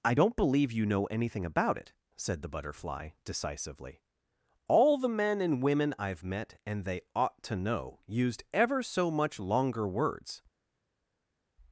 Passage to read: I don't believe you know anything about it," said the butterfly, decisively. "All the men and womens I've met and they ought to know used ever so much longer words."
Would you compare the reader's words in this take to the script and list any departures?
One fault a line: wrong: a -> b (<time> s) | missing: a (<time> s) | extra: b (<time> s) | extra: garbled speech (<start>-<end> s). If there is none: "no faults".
wrong: womens -> women (5.6 s)